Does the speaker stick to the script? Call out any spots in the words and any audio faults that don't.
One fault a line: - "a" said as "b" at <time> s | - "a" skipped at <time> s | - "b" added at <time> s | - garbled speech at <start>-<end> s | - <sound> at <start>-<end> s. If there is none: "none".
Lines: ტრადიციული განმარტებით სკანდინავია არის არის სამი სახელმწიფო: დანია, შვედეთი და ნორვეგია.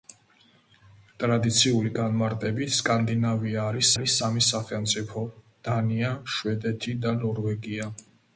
none